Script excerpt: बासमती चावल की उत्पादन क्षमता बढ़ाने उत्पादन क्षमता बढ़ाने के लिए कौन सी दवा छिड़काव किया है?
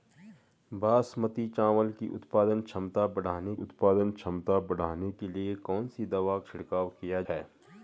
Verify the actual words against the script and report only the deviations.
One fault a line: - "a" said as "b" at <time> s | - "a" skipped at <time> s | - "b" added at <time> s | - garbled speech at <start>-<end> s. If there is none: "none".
none